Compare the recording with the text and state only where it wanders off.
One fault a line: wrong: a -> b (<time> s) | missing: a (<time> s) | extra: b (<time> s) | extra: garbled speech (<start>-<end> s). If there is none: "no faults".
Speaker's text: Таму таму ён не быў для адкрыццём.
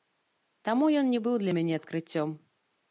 missing: таму (0.9 s)
extra: мяне (1.6 s)